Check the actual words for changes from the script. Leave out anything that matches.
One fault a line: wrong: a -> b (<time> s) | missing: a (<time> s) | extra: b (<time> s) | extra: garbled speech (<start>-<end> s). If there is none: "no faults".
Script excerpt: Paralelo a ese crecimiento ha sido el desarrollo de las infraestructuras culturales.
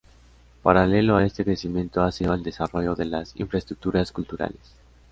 wrong: ese -> este (1.3 s)